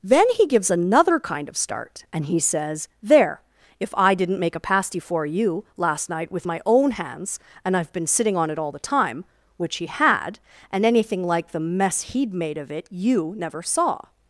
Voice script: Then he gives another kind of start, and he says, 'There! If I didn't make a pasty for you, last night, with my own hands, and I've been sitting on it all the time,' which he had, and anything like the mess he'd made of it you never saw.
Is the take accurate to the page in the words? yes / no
yes